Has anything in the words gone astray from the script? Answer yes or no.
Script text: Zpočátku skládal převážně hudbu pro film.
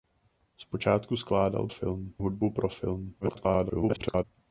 yes